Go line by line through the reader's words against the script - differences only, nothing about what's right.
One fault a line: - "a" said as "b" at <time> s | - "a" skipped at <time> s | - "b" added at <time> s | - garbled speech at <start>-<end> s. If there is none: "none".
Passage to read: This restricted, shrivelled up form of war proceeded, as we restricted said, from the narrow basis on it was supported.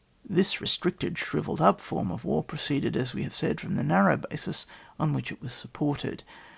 - "restricted" said as "have" at 3.2 s
- "which" added at 5.1 s